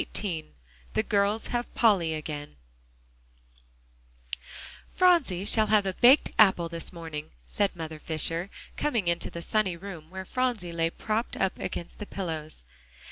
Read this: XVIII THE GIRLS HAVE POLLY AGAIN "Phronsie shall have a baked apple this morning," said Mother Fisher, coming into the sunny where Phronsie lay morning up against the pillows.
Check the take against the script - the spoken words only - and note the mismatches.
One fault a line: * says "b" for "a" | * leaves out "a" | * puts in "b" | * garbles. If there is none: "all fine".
* puts in "room"
* says "propped" for "morning"